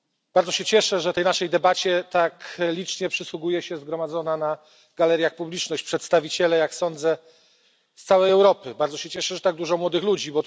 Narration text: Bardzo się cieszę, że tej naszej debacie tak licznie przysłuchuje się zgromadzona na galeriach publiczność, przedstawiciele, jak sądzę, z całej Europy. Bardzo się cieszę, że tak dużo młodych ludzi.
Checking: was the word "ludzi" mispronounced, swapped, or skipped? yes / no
no